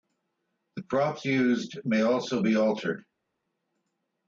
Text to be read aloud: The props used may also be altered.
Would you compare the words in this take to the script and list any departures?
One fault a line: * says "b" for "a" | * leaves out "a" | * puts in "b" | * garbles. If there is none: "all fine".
all fine